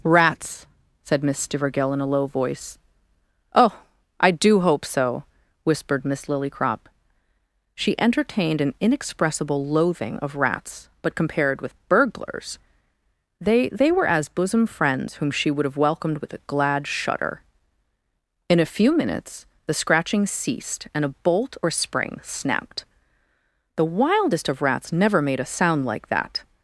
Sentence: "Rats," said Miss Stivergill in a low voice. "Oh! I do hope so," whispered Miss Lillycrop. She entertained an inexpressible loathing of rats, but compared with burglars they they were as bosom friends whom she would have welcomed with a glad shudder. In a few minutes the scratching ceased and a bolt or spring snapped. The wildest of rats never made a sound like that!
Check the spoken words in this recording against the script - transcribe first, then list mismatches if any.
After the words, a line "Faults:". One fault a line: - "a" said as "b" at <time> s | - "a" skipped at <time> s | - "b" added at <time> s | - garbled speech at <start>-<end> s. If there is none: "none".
"Rats," said Miss Stivergill in a low voice. "Oh! I do hope so," whispered Miss Lillycrop. She entertained an inexpressible loathing of rats, but compared with burglars they they were as bosom friends whom she would have welcomed with a glad shudder. In a few minutes the scratching ceased and a bolt or spring snapped. The wildest of rats never made a sound like that!
Faults:
none